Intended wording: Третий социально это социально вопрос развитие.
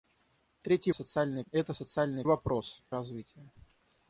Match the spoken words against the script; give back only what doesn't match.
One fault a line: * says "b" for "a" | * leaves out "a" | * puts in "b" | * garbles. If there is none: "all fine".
all fine